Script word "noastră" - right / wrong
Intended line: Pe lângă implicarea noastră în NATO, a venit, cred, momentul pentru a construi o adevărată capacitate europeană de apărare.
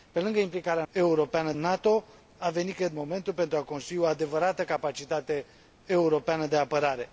wrong